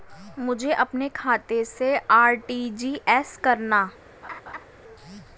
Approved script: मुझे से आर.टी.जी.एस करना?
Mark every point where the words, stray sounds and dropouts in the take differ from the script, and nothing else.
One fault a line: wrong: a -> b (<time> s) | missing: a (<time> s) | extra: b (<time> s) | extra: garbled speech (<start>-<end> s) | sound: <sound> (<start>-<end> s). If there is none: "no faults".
extra: अपने खाते (0.7 s)
sound: laugh (4.2-4.7 s)